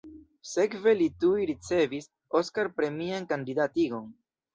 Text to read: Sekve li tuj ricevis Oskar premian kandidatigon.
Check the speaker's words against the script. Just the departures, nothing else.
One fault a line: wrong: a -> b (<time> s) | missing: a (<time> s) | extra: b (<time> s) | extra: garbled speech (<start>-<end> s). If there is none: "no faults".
no faults